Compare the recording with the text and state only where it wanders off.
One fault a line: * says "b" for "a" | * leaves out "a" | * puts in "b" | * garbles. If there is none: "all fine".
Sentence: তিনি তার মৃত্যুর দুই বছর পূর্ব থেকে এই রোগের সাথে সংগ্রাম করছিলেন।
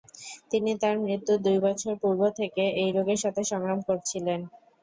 all fine